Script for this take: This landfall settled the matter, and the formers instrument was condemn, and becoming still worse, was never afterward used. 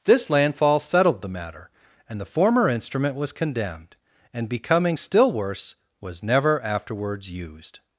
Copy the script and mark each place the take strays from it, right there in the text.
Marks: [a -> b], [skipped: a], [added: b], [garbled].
This landfall settled the matter, and the [formers -> former] instrument was [condemn, -> condemned] and becoming still worse, was never [afterward -> afterwards] used.